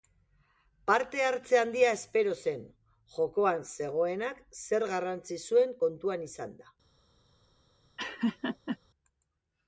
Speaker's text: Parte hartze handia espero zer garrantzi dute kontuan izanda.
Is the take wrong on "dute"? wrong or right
wrong